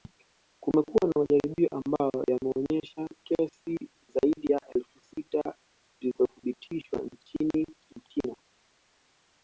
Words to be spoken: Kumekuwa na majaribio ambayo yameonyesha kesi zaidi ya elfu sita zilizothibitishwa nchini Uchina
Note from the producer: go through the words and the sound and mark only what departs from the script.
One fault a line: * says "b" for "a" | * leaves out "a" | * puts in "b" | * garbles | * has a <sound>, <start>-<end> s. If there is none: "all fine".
all fine